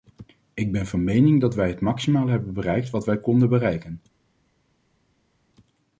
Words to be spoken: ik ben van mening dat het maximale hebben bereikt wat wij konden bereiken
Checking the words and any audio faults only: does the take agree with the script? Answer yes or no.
no